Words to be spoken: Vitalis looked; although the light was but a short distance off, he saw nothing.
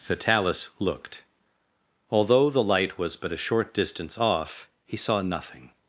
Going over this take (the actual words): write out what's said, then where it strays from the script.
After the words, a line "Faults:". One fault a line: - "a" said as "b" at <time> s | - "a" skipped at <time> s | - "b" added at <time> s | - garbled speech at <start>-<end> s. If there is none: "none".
Vitalis looked; although the light was but a short distance off, he saw nothing.
Faults:
none